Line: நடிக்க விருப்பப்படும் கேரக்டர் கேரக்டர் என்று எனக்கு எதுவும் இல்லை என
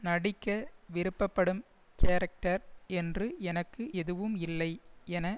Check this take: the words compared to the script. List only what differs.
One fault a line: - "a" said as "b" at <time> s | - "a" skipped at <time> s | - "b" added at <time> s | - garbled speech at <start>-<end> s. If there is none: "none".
- "கேரக்டர்" skipped at 2.6 s